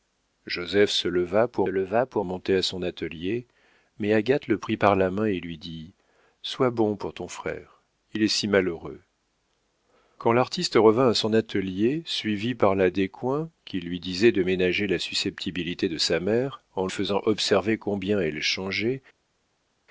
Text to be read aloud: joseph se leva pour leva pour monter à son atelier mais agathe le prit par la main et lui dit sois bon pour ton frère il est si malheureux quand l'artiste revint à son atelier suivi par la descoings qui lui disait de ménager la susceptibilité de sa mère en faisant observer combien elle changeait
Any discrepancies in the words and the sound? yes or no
no